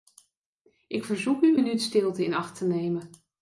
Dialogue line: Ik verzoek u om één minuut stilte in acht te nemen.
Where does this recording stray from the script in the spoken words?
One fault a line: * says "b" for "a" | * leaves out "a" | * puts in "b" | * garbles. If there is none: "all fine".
* leaves out "om één"